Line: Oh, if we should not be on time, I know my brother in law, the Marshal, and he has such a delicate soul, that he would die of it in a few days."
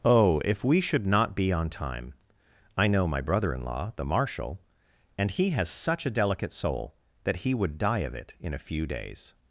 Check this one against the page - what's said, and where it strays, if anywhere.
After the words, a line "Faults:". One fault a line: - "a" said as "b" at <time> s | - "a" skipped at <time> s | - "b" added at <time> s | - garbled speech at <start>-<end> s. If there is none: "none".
Oh, if we should not be on time, I know my brother in law, the Marshal, and he has such a delicate soul, that he would die of it in a few days."
Faults:
none